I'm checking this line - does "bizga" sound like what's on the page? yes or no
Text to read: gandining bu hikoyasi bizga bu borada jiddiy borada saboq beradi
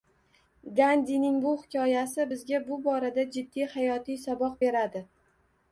yes